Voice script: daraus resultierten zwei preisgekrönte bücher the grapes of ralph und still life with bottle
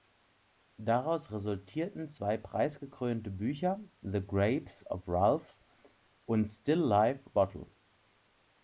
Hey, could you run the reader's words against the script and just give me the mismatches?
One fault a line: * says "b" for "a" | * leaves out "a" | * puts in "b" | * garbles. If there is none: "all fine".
* leaves out "with"